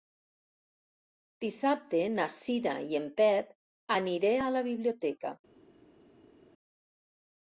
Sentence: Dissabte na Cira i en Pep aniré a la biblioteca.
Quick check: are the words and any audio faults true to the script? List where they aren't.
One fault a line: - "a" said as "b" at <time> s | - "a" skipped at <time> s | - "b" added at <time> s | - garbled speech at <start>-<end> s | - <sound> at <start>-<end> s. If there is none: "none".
none